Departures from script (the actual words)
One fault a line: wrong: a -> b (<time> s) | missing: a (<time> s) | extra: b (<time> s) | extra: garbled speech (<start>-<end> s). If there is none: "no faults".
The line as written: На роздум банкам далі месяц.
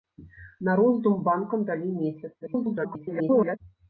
extra: garbled speech (2.4-3.6 s)